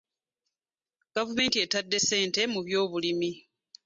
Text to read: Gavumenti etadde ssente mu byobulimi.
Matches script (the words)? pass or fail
pass